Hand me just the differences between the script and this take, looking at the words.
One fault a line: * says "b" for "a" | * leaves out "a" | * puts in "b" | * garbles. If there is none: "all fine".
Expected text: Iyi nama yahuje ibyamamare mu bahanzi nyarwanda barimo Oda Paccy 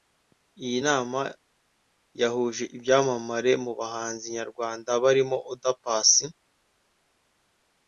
all fine